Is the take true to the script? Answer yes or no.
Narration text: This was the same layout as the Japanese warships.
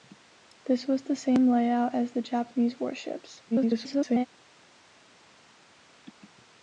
no